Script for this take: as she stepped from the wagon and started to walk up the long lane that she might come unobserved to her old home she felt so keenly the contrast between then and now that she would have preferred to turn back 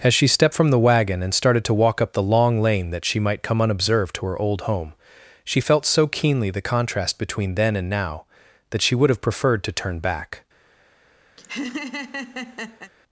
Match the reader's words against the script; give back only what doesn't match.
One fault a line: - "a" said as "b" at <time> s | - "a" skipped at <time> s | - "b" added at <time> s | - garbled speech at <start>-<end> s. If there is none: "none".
none